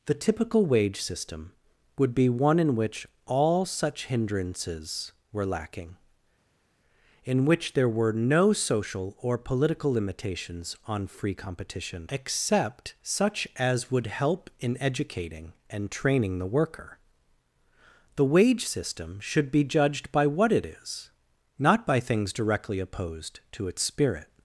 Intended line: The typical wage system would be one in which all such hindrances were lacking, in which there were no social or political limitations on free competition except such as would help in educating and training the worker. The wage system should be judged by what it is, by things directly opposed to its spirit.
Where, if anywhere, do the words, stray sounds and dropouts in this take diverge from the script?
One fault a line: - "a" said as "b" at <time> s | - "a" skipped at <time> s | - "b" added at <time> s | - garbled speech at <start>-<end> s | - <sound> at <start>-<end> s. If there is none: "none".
- "not" added at 21.6 s